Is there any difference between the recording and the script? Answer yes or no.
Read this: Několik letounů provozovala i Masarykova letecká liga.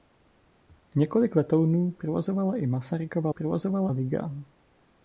yes